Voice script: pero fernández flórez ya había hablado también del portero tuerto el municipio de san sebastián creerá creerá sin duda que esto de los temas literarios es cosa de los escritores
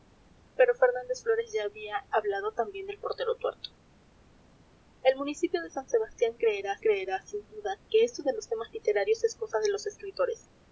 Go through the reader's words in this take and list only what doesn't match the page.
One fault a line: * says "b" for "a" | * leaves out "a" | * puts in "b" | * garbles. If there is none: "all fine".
all fine